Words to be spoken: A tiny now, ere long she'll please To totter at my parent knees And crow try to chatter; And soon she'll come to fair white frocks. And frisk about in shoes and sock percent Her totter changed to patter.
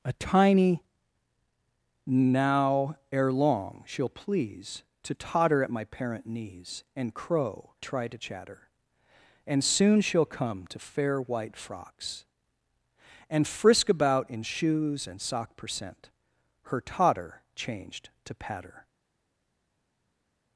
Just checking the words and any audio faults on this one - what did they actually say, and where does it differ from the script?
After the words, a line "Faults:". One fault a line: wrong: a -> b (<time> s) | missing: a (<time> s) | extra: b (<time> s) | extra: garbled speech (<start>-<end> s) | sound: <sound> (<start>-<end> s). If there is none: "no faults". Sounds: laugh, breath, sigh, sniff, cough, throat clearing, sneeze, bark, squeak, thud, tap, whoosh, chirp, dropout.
A tiny now, ere long she'll please To totter at my parent knees And crow try to chatter; And soon she'll come to fair white frocks. And frisk about in shoes and sock percent Her totter changed to patter.
Faults:
no faults